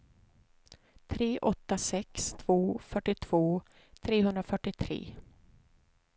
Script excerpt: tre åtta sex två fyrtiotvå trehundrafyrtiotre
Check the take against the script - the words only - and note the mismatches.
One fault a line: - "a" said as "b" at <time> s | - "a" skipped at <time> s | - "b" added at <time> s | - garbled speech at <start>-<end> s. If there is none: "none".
none